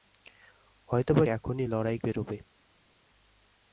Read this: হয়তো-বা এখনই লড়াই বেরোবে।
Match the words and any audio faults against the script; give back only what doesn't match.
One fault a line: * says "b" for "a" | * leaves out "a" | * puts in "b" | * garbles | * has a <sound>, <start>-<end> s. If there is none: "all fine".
all fine